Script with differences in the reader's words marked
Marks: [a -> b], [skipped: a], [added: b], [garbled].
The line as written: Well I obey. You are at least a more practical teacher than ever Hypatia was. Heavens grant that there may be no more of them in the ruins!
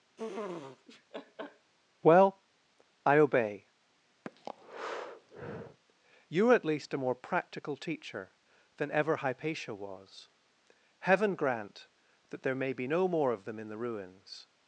Well I obey. You are at least a more practical teacher than ever Hypatia was. [Heavens -> Heaven] grant that there may be no more of them in the ruins!